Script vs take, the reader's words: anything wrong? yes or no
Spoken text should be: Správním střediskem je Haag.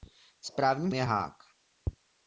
yes